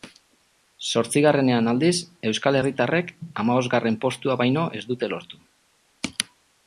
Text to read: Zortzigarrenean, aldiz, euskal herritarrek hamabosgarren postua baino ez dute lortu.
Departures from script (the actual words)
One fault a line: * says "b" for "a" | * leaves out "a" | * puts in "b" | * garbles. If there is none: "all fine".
all fine